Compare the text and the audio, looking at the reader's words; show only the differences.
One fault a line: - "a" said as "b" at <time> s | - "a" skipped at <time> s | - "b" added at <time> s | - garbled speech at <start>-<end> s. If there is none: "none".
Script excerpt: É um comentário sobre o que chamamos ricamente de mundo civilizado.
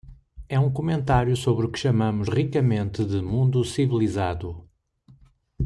none